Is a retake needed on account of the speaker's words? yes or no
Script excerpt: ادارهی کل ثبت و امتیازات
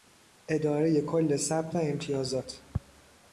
no